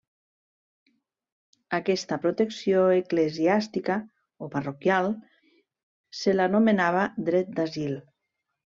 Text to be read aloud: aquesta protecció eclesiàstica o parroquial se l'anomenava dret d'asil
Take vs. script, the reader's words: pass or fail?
pass